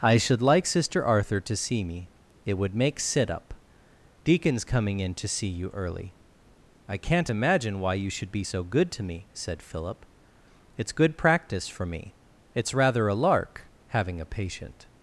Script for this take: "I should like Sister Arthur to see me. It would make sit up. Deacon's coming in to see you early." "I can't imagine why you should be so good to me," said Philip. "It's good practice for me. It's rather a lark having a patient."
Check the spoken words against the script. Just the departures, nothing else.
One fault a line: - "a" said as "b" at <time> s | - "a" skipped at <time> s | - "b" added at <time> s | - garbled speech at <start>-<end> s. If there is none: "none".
none